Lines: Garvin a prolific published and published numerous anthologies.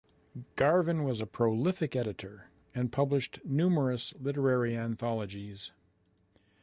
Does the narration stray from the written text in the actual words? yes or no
yes